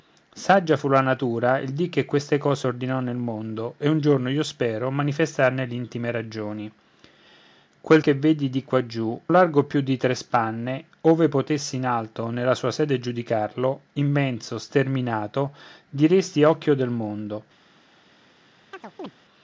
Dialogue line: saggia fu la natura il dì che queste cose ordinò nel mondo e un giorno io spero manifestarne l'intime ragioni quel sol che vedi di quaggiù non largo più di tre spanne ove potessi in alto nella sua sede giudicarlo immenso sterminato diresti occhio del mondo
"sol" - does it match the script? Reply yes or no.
no